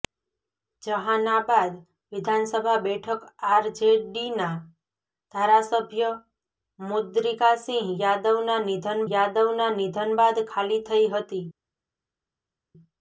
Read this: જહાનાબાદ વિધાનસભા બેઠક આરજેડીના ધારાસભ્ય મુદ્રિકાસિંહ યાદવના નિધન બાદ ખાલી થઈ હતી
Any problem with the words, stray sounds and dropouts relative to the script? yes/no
yes